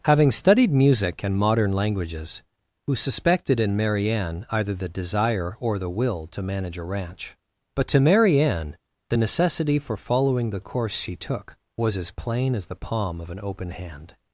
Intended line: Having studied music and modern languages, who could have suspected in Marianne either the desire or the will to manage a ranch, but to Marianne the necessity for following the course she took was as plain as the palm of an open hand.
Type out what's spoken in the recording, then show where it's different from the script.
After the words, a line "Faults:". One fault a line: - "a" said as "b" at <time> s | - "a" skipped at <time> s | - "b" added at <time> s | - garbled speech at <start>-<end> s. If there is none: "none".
Having studied music and modern languages, who suspected in Marianne either the desire or the will to manage a ranch, but to Marianne the necessity for following the course she took was as plain as the palm of an open hand.
Faults:
- "could have" skipped at 3.0 s